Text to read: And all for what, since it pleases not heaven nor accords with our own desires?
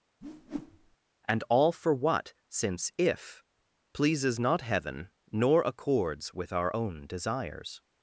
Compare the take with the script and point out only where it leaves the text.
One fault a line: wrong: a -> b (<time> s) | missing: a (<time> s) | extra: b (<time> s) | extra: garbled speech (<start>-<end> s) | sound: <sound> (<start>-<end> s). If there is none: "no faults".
sound: whoosh (0.2-1.0 s)
wrong: it -> if (3.0 s)